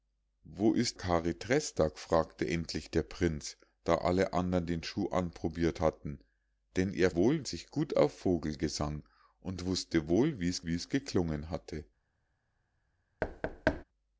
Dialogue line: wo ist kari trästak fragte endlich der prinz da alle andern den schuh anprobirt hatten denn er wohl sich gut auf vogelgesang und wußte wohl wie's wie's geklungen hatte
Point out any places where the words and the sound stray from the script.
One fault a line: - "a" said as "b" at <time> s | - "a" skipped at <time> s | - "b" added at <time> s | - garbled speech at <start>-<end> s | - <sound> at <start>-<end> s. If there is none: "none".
- thud at 13.2-13.8 s